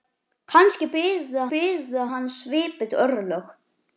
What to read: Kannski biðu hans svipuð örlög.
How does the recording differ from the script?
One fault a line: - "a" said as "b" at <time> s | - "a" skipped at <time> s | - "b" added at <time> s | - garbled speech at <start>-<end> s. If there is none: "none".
- "biðu" added at 1.5 s